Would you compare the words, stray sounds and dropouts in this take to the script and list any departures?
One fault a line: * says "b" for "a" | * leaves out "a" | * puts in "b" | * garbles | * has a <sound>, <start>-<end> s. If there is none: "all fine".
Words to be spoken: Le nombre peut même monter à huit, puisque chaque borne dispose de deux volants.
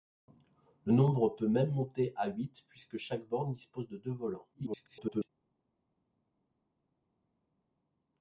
* garbles